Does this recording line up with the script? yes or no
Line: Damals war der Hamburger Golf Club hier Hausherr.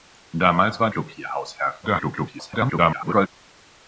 no